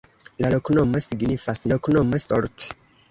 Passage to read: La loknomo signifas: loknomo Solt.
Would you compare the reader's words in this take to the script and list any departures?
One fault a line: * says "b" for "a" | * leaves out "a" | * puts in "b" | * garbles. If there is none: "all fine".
all fine